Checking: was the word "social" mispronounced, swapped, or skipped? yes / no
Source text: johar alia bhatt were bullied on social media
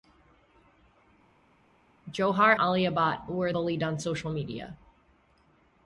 no